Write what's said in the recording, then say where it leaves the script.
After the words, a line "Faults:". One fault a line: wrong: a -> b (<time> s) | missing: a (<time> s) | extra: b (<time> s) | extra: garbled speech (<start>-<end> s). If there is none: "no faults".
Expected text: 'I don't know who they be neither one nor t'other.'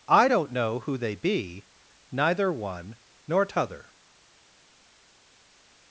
'I don't know who they be neither one nor t'other.'
Faults:
no faults